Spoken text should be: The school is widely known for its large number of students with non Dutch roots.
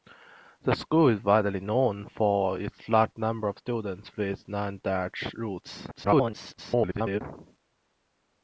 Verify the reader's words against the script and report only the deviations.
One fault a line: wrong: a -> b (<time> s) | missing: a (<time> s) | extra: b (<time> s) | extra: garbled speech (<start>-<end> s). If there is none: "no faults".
extra: garbled speech (5.9-7.2 s)